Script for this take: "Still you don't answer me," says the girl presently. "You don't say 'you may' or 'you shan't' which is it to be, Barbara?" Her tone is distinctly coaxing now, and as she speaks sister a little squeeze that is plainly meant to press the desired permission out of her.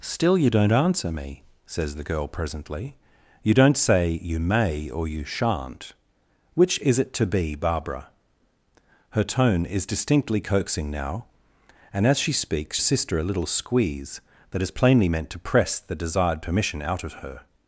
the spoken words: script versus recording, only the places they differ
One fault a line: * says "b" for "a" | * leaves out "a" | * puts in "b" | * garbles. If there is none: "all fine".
all fine